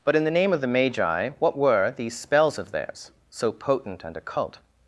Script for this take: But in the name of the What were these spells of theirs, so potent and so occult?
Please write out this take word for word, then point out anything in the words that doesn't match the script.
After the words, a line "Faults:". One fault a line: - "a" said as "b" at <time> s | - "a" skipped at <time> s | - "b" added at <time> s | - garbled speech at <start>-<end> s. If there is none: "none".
But in the name of the Magi, what were these spells of theirs, so potent and occult?
Faults:
- "Magi" added at 0.7 s
- "so" skipped at 4.2 s